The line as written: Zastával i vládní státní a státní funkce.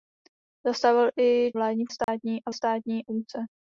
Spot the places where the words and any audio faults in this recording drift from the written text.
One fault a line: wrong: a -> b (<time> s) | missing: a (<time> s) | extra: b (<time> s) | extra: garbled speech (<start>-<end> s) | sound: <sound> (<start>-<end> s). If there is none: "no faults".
sound: dropout (2.0-2.1 s)